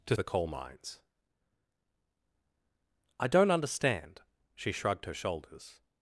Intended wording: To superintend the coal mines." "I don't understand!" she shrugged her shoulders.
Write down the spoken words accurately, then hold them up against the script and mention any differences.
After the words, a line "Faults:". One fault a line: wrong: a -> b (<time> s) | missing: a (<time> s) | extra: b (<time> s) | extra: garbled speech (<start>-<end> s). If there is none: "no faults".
To the coal mines." "I don't understand!" she shrugged her shoulders.
Faults:
missing: superintend (0.1 s)